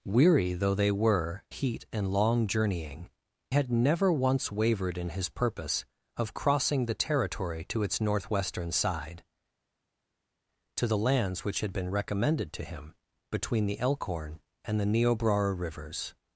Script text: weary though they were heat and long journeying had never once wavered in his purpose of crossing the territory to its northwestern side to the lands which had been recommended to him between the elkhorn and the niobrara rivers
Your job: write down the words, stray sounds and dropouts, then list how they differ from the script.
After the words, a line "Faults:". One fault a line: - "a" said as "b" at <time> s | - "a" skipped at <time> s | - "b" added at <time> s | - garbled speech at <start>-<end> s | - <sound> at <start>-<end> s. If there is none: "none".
weary though they were heat and long journeying had never once wavered in his purpose of crossing the territory to its northwestern side to the lands which had been recommended to him between the elkhorn and the niobrara rivers
Faults:
none